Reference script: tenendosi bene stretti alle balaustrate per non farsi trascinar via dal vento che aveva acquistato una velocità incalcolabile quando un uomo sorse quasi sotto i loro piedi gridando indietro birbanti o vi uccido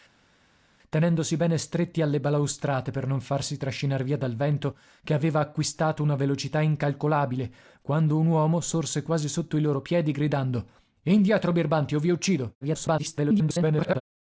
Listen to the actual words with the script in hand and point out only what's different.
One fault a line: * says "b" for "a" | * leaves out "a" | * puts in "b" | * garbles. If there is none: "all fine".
* garbles